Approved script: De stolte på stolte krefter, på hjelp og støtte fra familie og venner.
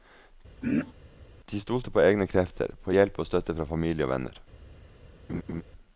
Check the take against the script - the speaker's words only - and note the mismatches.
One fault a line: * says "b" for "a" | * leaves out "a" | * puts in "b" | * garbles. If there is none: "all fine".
* says "egne" for "stolte"